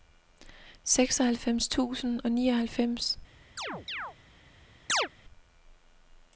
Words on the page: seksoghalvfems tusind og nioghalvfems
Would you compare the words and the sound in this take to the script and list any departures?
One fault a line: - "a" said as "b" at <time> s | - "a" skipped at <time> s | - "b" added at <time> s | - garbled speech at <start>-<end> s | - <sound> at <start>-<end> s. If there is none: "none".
- chirp at 3.6-4.2 s
- chirp at 4.9-5.1 s